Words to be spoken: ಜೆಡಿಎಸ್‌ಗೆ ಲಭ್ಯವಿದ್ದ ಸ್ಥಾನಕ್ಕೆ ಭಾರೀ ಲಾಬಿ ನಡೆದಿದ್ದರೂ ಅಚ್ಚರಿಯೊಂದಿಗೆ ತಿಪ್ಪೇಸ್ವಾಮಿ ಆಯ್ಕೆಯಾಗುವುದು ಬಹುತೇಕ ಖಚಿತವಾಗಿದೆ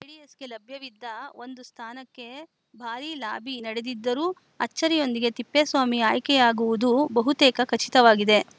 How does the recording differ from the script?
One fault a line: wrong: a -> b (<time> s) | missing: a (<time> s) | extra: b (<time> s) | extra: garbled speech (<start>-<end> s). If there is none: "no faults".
extra: ಒಂದು (1.4 s)